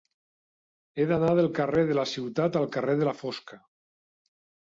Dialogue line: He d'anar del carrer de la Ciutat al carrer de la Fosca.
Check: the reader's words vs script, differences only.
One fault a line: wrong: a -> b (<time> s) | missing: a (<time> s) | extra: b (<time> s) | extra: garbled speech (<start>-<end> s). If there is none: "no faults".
no faults